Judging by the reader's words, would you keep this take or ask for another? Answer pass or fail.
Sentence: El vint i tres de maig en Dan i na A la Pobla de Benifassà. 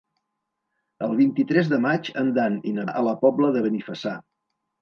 pass